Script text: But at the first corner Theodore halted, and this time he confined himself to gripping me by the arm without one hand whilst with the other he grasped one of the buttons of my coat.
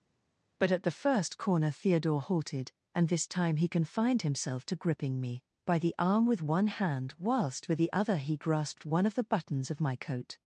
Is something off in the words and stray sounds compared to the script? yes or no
yes